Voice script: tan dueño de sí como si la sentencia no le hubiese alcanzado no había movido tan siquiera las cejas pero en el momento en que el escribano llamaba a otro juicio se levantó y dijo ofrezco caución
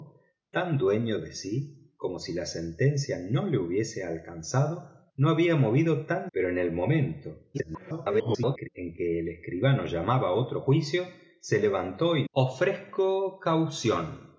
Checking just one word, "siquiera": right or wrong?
wrong